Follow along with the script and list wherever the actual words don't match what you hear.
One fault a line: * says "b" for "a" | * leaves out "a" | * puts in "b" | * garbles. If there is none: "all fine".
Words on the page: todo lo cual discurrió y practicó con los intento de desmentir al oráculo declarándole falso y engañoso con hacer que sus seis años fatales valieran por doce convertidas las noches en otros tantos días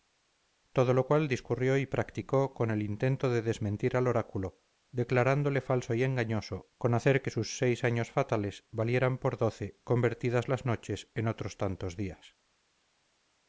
* says "el" for "los"